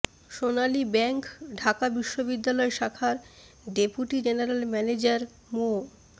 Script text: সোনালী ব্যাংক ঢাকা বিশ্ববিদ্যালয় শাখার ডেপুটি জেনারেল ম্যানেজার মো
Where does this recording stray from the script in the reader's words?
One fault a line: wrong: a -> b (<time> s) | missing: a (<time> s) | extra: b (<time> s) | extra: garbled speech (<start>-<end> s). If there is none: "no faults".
no faults